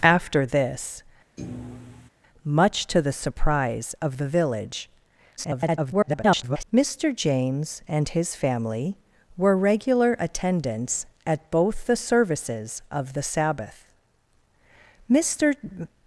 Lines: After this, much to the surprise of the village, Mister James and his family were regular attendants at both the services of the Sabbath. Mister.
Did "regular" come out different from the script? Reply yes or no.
no